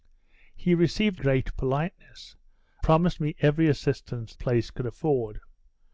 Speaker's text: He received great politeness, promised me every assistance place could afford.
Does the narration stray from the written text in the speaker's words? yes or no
no